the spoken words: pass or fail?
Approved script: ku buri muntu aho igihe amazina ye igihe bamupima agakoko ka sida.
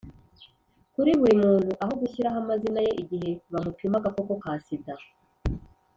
fail